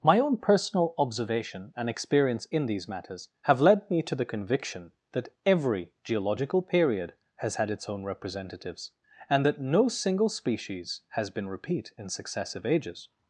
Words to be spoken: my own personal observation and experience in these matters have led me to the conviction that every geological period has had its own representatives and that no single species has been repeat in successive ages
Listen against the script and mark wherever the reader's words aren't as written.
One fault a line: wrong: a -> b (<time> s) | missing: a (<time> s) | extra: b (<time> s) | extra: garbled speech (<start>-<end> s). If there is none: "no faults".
no faults